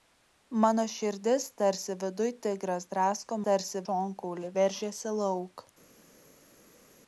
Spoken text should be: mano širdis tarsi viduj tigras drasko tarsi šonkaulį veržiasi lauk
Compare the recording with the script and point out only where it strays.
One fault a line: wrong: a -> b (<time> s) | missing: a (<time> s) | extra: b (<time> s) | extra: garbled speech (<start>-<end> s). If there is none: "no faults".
no faults